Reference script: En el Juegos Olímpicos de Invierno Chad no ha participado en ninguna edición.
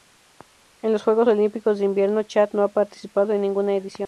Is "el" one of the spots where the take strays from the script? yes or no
yes